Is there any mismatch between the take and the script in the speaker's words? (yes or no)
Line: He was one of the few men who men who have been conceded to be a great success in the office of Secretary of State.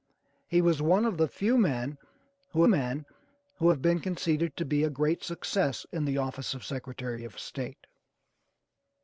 no